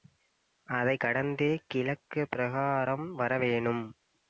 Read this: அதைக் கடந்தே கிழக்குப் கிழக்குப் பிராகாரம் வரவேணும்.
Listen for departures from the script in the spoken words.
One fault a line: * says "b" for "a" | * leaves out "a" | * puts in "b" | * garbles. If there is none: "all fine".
* leaves out "கிழக்குப்"